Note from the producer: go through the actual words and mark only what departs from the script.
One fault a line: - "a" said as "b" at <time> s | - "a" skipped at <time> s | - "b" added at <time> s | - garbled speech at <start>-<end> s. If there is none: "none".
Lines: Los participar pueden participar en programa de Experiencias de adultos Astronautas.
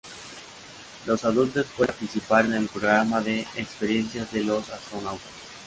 - "participar" said as "adultos" at 1.2 s
- "el" added at 2.5 s
- "adultos" said as "los" at 4.4 s